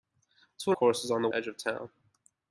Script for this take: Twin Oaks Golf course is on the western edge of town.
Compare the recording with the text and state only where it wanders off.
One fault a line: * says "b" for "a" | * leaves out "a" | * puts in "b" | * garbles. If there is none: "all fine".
* leaves out "Oaks Golf"
* leaves out "western"